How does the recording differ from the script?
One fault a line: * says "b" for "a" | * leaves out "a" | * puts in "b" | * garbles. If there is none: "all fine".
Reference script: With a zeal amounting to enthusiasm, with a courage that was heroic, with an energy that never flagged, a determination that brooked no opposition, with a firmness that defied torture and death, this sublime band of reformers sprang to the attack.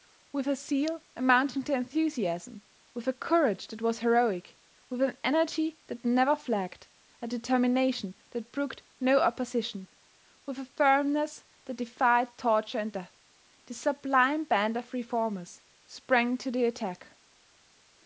all fine